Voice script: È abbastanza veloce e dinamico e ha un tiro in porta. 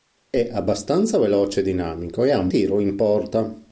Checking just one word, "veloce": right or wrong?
right